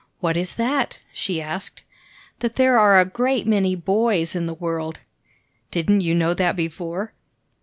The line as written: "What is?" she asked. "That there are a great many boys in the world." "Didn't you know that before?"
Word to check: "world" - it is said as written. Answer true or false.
true